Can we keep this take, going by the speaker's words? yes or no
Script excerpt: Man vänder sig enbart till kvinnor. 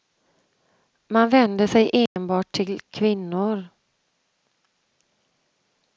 yes